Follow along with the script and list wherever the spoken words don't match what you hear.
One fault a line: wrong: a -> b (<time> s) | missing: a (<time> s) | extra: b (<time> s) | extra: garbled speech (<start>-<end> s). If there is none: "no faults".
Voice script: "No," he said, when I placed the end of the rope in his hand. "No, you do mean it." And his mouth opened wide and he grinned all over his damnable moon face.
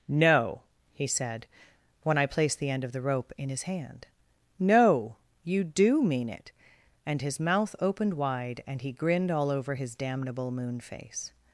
no faults